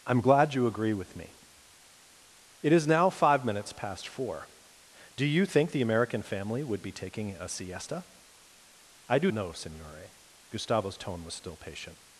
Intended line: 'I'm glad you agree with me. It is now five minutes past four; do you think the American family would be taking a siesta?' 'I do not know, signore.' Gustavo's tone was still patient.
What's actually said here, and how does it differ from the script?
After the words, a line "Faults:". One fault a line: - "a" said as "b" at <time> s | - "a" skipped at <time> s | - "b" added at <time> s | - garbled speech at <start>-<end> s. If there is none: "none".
'I'm glad you agree with me. It is now five minutes past four; do you think the American family would be taking a siesta?' 'I do know, signore.' Gustavo's tone was still patient.
Faults:
- "not" skipped at 9.3 s